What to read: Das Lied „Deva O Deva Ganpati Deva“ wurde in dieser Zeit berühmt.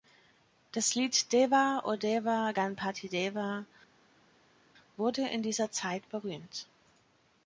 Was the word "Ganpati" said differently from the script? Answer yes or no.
no